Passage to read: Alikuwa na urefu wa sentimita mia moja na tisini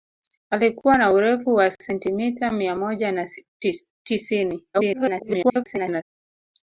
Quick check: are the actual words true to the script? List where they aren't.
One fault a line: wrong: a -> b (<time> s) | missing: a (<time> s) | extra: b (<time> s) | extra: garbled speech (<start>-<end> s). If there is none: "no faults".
extra: garbled speech (4.7-6.0 s)